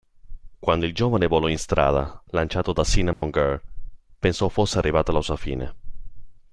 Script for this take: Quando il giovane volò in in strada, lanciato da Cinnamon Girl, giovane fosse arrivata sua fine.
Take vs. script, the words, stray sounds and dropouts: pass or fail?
fail